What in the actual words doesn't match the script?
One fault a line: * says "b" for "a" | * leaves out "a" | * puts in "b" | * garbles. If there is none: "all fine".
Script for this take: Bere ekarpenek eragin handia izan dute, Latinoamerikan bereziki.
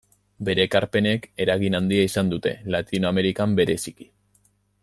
all fine